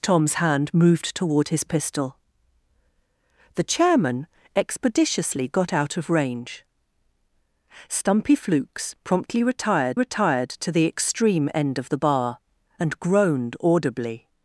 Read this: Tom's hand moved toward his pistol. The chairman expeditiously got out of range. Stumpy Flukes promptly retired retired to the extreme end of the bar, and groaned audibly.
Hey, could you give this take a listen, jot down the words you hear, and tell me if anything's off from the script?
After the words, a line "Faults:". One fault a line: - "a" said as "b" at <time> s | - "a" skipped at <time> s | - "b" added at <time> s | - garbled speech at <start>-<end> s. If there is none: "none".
Tom's hand moved toward his pistol. The chairman expeditiously got out of range. Stumpy Flukes promptly retired retired to the extreme end of the bar, and groaned audibly.
Faults:
none